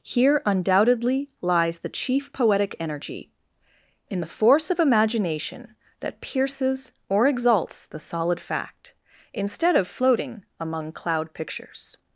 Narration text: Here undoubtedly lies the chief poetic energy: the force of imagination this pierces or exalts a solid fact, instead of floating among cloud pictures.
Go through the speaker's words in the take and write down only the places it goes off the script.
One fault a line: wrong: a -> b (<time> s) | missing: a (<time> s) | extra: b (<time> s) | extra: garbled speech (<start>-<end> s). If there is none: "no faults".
extra: in (4.1 s)
wrong: this -> that (6.0 s)
wrong: a -> the (7.8 s)